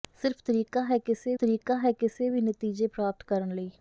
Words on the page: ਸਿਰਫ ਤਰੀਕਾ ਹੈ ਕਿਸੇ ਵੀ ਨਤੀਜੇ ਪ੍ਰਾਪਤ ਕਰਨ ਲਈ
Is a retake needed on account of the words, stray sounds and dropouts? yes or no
yes